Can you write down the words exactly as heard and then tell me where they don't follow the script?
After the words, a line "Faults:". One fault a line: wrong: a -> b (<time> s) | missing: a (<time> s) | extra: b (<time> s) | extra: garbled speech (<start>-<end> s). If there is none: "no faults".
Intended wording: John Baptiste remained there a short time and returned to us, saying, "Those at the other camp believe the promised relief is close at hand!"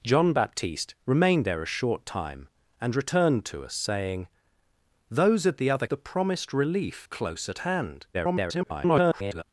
John Baptiste remained there a short time and returned to us, saying, "Those at the other the promised relief close at hand!" [garbled]
Faults:
missing: camp believe (5.8 s)
missing: is (7.1 s)
extra: garbled speech (8.1-9.4 s)